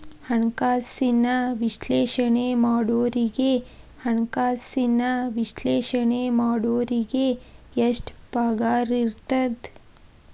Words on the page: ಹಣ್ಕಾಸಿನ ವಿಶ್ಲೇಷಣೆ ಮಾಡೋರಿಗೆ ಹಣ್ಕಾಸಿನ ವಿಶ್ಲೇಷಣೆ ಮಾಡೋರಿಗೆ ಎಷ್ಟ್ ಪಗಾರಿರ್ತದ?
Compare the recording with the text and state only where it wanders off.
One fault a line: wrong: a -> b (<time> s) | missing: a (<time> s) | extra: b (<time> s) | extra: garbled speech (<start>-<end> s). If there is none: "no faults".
no faults